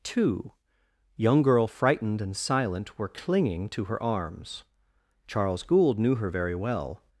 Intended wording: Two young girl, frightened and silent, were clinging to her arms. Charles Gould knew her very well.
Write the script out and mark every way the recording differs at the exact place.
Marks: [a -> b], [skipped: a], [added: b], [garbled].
Two young girl, frightened and silent, were clinging to her arms. Charles Gould knew her very well.